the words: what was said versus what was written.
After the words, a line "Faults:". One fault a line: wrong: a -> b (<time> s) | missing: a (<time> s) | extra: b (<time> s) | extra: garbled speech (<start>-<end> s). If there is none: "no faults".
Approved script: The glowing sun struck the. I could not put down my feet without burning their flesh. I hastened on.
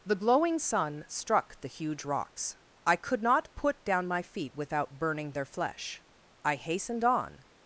The glowing sun struck the huge rocks. I could not put down my feet without burning their flesh. I hastened on.
Faults:
extra: huge rocks (1.7 s)